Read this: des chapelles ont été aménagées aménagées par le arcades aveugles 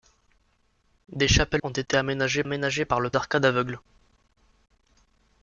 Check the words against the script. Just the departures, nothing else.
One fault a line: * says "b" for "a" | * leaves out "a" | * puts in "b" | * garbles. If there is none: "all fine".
all fine